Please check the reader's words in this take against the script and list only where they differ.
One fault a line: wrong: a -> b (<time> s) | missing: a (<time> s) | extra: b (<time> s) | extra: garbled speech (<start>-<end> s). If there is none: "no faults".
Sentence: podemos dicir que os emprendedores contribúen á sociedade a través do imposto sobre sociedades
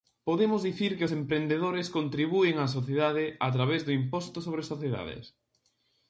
no faults